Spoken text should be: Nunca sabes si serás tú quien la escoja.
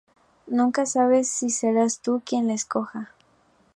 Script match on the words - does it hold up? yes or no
yes